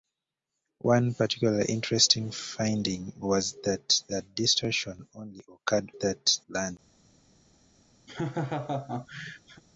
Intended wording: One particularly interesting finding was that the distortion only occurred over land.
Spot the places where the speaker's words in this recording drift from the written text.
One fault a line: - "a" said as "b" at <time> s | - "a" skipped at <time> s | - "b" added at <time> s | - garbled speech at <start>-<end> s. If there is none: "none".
- "over" said as "that" at 6.0 s